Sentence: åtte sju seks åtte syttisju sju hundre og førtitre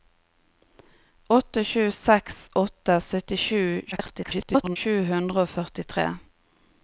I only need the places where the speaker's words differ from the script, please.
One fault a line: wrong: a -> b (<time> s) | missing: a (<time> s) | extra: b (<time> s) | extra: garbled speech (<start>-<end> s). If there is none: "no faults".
extra: garbled speech (3.9-4.8 s)